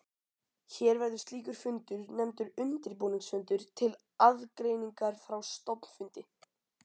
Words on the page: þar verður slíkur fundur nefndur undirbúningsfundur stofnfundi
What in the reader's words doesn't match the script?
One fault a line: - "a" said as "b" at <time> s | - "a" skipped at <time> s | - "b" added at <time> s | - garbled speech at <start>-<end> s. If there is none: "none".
- "þar" said as "hér" at 0.8 s
- "til aðgreiningar frá" added at 3.8 s